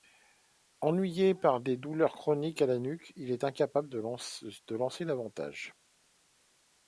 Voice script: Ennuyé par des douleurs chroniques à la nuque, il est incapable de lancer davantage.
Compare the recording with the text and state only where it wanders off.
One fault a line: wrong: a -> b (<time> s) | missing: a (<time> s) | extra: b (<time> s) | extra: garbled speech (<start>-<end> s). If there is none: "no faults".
no faults